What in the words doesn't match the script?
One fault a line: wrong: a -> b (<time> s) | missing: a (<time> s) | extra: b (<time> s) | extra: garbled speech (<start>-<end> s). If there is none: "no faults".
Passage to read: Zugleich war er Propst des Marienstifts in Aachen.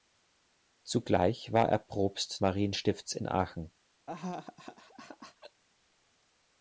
missing: des (2.4 s)